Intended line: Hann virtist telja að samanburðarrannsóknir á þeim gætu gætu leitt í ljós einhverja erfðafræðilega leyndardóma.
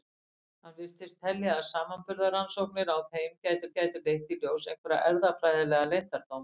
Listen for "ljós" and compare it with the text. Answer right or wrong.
right